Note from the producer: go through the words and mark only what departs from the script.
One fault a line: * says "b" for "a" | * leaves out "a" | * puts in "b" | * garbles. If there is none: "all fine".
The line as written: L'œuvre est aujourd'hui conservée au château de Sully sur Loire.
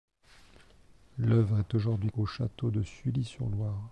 * leaves out "conservée"